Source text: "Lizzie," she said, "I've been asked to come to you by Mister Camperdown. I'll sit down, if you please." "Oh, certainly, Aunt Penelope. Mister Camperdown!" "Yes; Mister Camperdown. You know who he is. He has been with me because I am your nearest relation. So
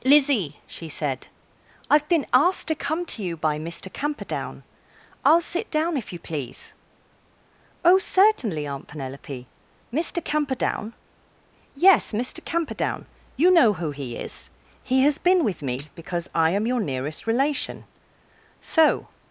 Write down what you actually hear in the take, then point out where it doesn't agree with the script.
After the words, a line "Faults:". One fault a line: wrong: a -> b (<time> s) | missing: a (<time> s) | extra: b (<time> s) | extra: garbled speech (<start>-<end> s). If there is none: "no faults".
"Lizzie," she said, "I've been asked to come to you by Mister Camperdown. I'll sit down, if you please." "Oh, certainly, Aunt Penelope. Mister Camperdown!" "Yes; Mister Camperdown. You know who he is. He has been with me because I am your nearest relation. So
Faults:
no faults